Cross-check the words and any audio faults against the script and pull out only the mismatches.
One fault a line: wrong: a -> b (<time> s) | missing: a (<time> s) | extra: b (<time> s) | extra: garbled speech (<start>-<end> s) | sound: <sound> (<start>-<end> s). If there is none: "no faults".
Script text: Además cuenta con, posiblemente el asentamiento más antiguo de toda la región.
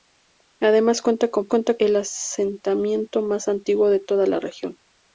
wrong: posiblemente -> cuenta (1.5 s)